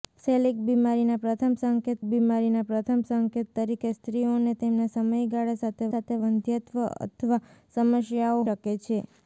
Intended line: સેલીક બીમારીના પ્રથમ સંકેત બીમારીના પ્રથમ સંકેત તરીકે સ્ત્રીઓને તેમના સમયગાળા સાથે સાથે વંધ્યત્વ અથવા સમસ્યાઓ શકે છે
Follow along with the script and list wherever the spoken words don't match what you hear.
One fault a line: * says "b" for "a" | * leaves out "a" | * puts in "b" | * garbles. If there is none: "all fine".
all fine